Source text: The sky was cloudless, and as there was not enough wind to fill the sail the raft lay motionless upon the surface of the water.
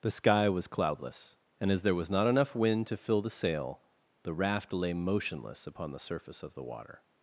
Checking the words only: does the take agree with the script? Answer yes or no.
yes